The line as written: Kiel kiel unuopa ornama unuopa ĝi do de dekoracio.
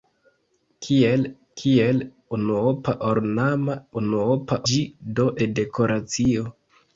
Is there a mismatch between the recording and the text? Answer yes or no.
no